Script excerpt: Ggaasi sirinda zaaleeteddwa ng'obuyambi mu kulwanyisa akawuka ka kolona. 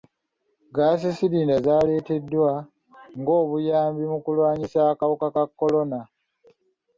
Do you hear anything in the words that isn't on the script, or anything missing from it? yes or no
no